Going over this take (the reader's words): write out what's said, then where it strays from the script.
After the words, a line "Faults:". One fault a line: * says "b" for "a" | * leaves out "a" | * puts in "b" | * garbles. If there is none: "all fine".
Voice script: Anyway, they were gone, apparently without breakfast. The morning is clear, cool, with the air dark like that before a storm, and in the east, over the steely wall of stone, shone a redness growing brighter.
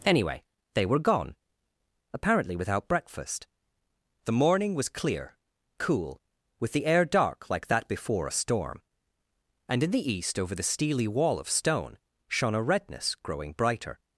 Anyway, they were gone, apparently without breakfast. The morning was clear, cool, with the air dark like that before a storm, and in the east, over the steely wall of stone, shone a redness growing brighter.
Faults:
* says "was" for "is"